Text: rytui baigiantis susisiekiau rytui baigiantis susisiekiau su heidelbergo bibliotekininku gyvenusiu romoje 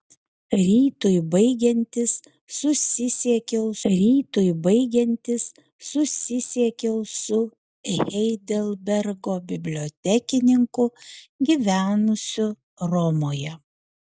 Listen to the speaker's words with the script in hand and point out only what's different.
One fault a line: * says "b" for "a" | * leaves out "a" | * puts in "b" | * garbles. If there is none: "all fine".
all fine